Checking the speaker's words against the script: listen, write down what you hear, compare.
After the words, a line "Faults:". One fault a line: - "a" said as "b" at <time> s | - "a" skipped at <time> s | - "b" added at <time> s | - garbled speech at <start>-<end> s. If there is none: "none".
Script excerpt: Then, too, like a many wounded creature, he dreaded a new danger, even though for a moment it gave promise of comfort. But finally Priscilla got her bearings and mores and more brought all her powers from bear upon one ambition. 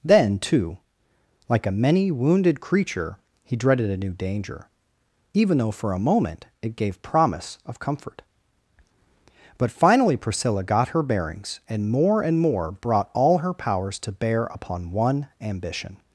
Then, too, like a many wounded creature, he dreaded a new danger, even though for a moment it gave promise of comfort. But finally Priscilla got her bearings and more and more brought all her powers to bear upon one ambition.
Faults:
- "mores" said as "more" at 11.9 s
- "from" said as "to" at 14.0 s